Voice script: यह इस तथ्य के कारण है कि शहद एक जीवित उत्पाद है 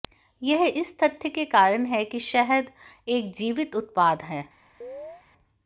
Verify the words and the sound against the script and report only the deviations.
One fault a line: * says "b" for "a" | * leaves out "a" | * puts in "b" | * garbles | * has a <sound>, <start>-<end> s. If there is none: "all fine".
* has a chirp, 4.8-5.2 s